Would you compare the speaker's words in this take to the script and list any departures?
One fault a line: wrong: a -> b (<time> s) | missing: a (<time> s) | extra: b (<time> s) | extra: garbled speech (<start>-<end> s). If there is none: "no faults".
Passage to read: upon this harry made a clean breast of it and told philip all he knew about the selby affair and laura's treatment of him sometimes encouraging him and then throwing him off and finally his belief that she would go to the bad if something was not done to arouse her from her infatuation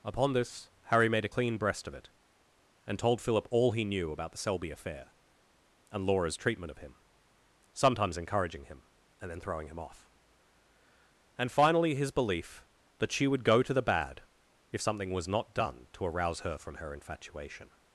no faults